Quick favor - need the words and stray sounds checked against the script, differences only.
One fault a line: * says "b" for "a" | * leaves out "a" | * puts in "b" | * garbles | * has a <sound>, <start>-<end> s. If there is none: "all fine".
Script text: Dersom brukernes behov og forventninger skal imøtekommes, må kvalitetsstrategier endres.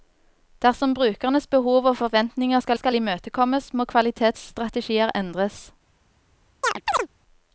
* puts in "skal"
* has a chirp, 6.6-7.1 s